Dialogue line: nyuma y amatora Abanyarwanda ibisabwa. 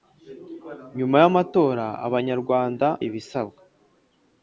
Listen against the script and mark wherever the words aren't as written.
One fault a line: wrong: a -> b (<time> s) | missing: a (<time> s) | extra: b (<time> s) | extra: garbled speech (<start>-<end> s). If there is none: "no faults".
no faults